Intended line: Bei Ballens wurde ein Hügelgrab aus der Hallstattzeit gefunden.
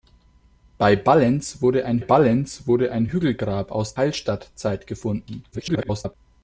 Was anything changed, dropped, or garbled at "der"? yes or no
yes